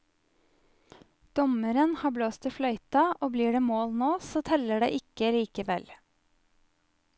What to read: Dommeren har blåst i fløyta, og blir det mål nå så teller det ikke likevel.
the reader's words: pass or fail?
pass